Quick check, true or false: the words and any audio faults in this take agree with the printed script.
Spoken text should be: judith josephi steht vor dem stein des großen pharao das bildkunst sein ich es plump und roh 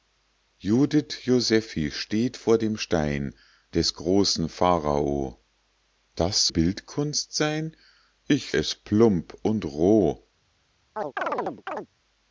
false